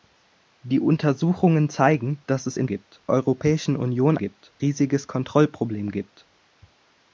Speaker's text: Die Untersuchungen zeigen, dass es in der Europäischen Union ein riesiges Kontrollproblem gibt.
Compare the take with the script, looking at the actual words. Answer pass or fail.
fail